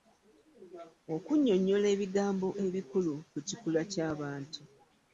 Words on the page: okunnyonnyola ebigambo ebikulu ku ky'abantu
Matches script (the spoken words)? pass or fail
fail